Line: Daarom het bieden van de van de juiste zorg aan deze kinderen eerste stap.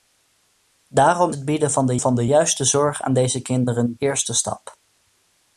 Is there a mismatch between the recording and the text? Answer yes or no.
no